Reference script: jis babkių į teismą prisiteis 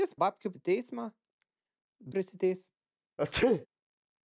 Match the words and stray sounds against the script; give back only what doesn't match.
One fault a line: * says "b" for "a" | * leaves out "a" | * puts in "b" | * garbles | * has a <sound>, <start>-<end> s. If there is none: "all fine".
* has a sneeze, 3.2-3.7 s